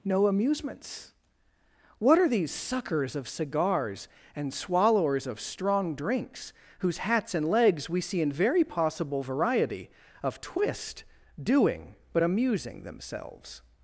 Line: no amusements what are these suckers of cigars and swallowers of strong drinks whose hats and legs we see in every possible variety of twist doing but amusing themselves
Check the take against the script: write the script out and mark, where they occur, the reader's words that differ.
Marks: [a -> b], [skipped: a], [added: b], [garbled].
no amusements what are these suckers of cigars and swallowers of strong drinks whose hats and legs we see in [every -> very] possible variety of twist doing but amusing themselves